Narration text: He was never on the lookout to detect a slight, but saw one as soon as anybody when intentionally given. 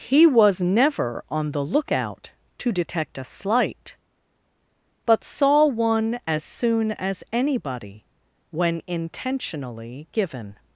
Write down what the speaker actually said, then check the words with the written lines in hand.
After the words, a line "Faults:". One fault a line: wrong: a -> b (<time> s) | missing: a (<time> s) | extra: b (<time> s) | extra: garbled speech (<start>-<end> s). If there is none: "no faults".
He was never on the lookout to detect a slight, but saw one as soon as anybody when intentionally given.
Faults:
no faults